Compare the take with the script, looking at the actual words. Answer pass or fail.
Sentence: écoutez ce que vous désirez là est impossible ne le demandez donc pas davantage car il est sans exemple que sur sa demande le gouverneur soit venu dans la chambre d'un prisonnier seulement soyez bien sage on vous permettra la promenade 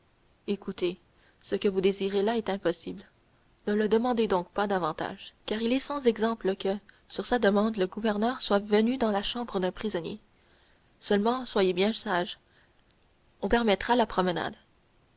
fail